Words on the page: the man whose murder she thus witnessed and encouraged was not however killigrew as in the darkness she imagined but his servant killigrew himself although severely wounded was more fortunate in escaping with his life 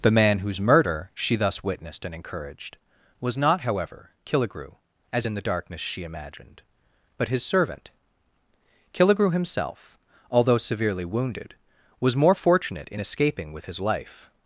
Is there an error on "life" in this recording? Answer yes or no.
no